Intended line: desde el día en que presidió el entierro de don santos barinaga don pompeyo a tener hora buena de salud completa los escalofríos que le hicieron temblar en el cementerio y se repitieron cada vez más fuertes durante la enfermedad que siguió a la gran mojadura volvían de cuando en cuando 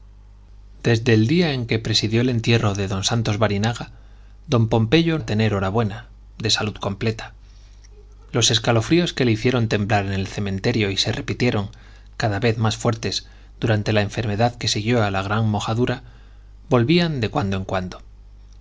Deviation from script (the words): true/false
false